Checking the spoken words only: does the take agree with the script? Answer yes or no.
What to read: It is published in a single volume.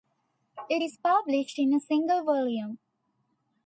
yes